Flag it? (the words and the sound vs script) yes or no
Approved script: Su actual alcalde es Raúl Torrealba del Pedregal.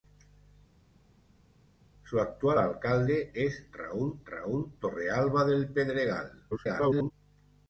yes